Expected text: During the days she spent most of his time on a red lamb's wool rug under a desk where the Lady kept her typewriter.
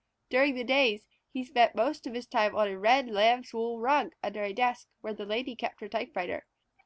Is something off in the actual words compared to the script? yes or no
yes